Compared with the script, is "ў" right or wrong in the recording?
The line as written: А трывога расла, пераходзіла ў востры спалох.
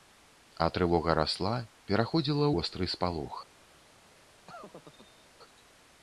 wrong